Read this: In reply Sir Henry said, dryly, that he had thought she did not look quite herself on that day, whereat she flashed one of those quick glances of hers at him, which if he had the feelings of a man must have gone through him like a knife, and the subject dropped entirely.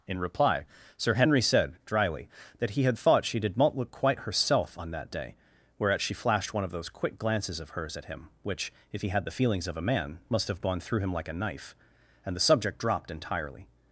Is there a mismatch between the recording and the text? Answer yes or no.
no